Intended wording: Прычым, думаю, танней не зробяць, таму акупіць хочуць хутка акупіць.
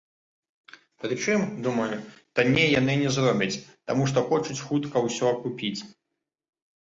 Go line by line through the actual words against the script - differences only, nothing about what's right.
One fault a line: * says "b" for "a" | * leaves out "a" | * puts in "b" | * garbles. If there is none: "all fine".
* puts in "яны"
* says "што" for "акупіць"
* puts in "ўсё"